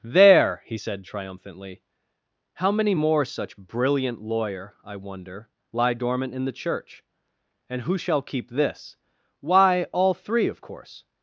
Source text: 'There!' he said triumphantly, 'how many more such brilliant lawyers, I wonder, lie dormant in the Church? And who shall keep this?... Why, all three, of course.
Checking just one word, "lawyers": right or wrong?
wrong